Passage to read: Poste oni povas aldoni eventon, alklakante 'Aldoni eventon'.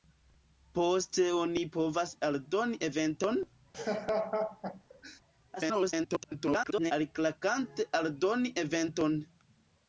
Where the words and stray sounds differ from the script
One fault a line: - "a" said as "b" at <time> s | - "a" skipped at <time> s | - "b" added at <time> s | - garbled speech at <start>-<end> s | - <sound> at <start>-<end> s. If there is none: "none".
- laugh at 3.7-5.2 s
- garbled speech at 5.6-6.9 s